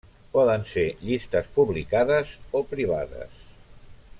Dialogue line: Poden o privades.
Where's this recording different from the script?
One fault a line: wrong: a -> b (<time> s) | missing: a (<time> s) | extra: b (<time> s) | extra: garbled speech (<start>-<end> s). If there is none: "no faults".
extra: ser llistes publicades (0.7 s)